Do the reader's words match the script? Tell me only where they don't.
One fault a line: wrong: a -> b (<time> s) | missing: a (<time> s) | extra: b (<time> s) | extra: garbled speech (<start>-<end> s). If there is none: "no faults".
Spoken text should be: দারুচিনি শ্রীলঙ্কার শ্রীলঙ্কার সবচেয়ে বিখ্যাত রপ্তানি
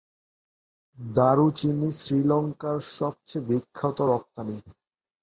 missing: শ্রীলঙ্কার (2.8 s)